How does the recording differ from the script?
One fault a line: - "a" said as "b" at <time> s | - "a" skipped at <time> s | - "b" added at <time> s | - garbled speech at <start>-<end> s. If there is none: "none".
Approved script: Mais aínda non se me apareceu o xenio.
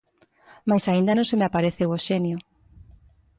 none